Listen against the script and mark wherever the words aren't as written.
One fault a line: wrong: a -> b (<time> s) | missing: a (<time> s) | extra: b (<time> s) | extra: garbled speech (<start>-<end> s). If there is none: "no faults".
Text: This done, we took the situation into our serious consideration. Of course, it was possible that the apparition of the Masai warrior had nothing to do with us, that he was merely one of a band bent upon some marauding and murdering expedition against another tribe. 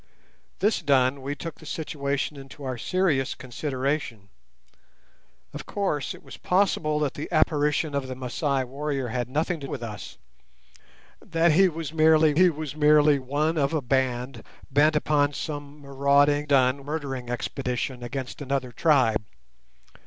missing: do (9.7 s)
extra: he was merely (12.3 s)
wrong: and -> done (16.4 s)